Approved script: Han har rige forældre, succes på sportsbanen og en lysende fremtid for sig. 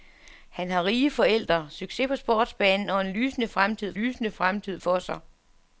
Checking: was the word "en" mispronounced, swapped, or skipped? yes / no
no